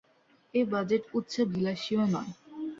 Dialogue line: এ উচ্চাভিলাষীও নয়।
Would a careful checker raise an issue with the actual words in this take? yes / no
yes